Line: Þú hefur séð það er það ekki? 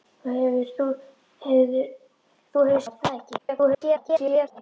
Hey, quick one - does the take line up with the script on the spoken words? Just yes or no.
no